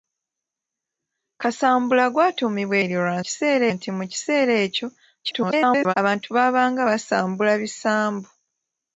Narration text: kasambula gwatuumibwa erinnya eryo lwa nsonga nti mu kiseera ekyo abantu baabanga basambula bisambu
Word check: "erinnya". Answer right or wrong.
wrong